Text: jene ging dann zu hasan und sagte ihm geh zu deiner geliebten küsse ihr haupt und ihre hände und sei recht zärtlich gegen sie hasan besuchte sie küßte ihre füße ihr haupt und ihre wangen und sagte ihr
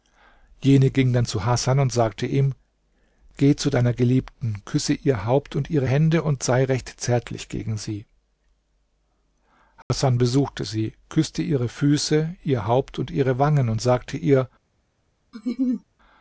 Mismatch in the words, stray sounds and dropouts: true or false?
true